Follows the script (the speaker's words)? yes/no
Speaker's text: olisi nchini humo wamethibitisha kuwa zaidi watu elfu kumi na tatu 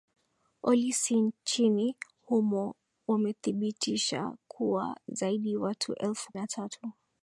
no